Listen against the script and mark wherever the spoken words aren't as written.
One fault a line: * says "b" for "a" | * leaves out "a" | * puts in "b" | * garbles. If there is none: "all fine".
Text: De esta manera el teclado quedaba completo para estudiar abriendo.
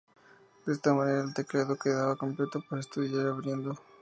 all fine